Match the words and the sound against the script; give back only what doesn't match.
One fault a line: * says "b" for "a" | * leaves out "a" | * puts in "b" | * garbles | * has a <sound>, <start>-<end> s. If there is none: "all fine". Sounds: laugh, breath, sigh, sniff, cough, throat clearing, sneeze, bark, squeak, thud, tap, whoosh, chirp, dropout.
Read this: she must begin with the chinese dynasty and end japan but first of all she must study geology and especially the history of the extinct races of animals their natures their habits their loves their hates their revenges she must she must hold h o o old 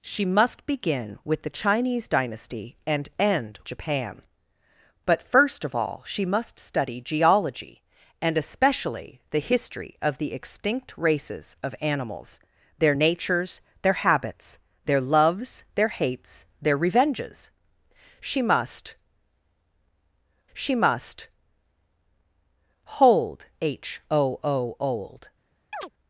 * has a chirp, 25.7-25.9 s